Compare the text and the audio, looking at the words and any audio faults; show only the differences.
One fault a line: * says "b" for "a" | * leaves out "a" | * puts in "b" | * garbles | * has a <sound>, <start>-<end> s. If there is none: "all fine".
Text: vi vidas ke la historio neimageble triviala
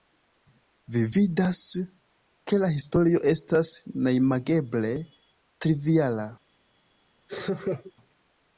* puts in "estas"
* has a laugh, 7.3-7.9 s